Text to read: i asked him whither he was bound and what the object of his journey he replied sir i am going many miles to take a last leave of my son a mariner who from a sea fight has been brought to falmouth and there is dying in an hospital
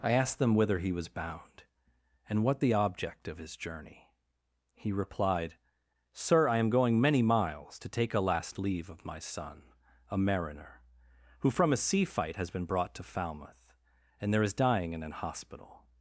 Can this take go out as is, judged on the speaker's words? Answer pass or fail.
fail